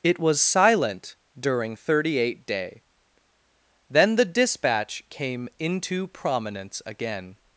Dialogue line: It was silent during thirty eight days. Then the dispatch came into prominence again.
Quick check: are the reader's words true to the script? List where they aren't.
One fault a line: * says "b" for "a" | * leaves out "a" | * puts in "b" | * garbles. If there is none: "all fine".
* says "day" for "days"